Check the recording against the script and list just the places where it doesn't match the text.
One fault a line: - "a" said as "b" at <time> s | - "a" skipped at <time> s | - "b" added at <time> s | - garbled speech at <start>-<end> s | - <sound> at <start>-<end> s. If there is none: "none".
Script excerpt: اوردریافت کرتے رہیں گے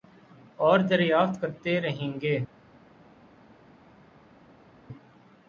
none